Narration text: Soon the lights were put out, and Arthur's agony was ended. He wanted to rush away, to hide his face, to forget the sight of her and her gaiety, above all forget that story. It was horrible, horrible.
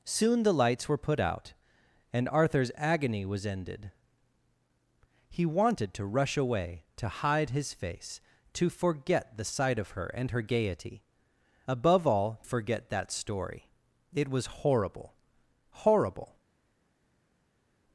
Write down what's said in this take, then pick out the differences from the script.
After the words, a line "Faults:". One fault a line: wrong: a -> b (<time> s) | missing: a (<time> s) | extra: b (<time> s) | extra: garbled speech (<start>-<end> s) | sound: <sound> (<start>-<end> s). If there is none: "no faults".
Soon the lights were put out, and Arthur's agony was ended. He wanted to rush away, to hide his face, to forget the sight of her and her gaiety, above all forget that story. It was horrible, horrible.
Faults:
no faults